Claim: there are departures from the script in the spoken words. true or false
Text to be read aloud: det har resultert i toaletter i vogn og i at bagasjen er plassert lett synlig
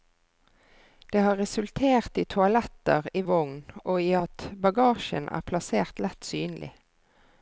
false